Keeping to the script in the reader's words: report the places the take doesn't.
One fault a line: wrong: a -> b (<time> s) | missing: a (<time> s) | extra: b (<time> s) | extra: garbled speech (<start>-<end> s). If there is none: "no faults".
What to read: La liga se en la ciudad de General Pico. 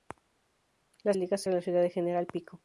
no faults